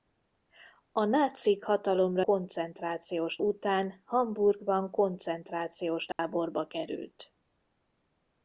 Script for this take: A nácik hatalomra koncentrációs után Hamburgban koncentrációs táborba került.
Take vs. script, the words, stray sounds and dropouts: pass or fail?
fail